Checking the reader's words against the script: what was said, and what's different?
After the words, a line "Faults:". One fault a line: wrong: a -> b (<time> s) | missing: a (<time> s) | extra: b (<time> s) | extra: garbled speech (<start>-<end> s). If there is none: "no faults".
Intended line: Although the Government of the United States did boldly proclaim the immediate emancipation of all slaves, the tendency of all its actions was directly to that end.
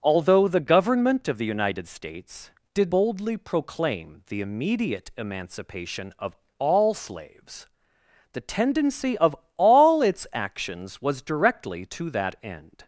Although the Government of the United States did boldly proclaim the immediate emancipation of all slaves, the tendency of all its actions was directly to that end.
Faults:
no faults